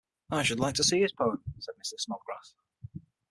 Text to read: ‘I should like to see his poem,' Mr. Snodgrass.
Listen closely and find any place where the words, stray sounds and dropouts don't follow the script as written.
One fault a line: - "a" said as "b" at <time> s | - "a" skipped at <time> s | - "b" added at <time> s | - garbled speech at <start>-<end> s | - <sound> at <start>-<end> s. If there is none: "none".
- "said" added at 1.6 s